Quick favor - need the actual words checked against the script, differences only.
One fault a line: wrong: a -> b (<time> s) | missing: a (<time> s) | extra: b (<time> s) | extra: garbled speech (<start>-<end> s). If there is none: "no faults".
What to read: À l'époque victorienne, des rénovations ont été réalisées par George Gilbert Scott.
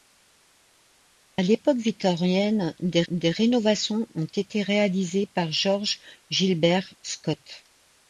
extra: des (3.1 s)